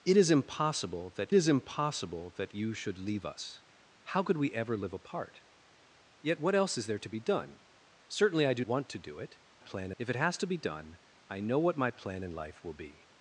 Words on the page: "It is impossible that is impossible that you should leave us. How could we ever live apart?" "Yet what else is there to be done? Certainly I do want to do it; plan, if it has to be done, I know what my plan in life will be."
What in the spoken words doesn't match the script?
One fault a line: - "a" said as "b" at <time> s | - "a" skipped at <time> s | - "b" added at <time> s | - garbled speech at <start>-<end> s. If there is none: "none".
none